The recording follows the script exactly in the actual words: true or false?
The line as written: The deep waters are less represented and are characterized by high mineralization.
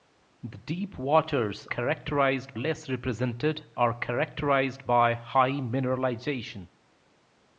false